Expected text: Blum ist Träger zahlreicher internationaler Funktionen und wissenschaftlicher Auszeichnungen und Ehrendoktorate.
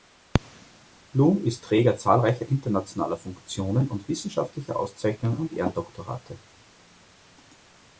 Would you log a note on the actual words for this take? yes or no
no